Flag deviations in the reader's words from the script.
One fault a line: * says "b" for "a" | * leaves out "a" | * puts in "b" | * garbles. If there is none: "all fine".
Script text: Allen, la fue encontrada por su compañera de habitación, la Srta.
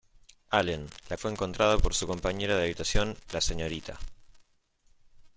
all fine